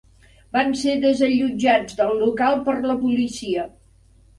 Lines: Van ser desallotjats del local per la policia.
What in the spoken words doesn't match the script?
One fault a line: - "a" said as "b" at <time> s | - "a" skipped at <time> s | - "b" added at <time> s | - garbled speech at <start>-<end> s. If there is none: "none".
none